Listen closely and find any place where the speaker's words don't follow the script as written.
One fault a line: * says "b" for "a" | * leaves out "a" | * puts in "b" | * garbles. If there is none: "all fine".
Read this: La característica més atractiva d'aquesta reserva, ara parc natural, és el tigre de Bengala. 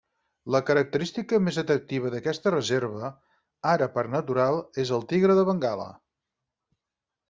all fine